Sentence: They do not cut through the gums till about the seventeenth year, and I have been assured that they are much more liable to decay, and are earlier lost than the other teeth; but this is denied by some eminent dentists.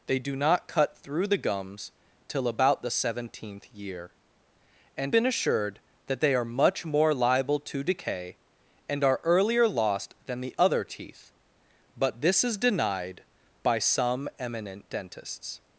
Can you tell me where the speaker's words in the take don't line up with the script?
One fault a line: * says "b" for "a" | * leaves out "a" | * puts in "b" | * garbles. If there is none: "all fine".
* leaves out "I have"